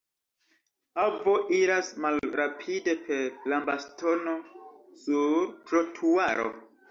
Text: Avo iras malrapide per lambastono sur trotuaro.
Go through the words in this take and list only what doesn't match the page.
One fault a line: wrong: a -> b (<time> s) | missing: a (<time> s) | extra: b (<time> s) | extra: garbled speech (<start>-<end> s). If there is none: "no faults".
no faults